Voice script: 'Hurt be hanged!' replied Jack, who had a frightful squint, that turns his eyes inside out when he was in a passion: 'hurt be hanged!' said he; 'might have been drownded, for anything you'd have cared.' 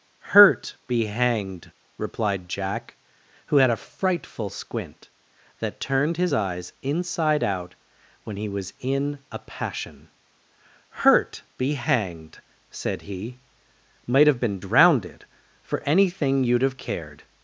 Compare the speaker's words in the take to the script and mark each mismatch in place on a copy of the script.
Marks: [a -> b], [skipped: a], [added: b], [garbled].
'Hurt be hanged!' replied Jack, who had a frightful squint, that [turns -> turned] his eyes inside out when he was in a passion: 'hurt be hanged!' said he; 'might have been drownded, for anything you'd have cared.'